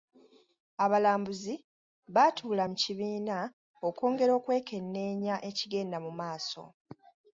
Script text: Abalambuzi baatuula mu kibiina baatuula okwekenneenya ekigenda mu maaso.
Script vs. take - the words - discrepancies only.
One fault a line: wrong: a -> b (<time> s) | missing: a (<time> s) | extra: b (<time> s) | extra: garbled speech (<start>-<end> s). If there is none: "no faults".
wrong: baatuula -> okwongera (3.9 s)